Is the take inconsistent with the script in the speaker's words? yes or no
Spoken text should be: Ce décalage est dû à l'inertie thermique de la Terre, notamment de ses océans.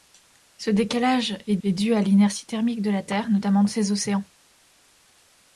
yes